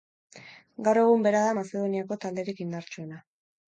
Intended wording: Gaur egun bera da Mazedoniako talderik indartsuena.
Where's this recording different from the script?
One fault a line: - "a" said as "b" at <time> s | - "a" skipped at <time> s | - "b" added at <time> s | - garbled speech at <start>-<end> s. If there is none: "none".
none